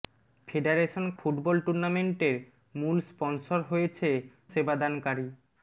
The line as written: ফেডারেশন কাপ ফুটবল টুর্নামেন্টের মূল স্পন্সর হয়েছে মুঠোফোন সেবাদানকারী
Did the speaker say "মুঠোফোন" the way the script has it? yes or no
no